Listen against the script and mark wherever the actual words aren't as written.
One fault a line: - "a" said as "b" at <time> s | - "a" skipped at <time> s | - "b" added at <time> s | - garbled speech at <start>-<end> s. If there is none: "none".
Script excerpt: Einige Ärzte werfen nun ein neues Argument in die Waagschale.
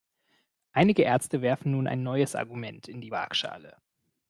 none